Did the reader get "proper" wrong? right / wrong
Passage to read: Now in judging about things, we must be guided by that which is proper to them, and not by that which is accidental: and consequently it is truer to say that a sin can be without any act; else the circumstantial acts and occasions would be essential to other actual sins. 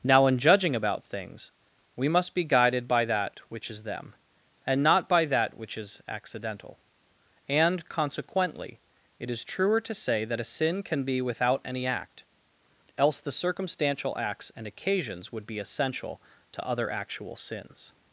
wrong